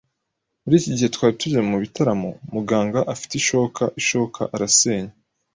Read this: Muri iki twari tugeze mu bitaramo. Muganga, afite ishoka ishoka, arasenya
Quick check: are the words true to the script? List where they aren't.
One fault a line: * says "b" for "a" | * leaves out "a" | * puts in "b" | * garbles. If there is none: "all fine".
* puts in "gihe"